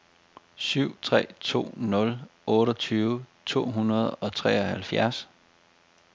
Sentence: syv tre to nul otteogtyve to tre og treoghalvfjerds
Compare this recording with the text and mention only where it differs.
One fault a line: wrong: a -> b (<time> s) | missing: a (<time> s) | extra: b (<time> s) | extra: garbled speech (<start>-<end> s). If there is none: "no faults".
wrong: tre -> hundrede (3.7 s)